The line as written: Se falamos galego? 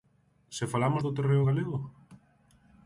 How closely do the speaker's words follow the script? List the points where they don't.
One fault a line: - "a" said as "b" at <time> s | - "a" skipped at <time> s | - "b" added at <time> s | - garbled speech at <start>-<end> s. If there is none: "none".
- "do terreo" added at 1.0 s